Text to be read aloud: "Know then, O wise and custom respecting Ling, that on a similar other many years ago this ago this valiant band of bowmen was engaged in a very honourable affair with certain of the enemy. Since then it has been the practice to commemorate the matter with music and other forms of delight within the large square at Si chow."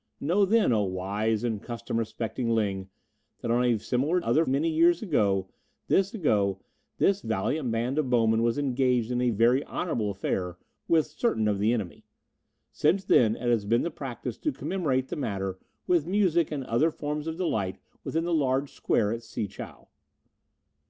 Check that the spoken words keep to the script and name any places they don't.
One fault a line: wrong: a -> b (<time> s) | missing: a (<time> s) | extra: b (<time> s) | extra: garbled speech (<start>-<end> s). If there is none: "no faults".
no faults